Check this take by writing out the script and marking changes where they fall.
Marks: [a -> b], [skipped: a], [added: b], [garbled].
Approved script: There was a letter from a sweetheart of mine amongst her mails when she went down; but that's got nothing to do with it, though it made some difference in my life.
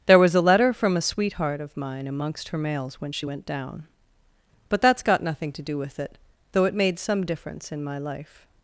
There was a letter from a sweetheart of mine amongst her mails when she went down; but that's got nothing to do with it, though it made some difference in my life.